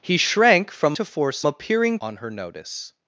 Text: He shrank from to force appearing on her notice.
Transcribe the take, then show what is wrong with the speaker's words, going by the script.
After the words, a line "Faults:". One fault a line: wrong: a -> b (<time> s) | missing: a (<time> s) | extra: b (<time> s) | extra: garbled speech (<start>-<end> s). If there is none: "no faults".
He shrank from to force appearing on her notice.
Faults:
no faults